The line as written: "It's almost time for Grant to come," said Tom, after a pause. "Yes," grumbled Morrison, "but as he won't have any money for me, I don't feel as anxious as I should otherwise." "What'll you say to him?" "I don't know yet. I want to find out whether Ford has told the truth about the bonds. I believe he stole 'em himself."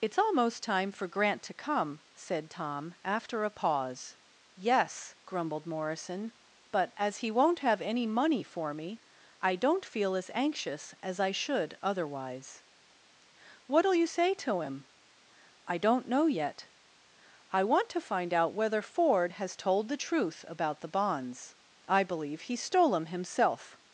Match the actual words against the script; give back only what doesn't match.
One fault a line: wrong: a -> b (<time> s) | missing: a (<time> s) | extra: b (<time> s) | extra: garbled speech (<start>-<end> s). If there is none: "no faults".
no faults